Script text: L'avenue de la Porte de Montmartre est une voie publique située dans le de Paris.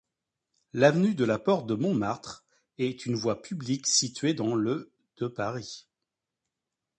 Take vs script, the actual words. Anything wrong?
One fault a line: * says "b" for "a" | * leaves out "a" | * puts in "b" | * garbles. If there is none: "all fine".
all fine